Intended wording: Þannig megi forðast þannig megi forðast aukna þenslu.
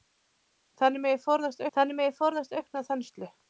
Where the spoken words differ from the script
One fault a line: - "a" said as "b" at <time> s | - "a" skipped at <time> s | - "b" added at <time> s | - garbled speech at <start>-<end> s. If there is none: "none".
none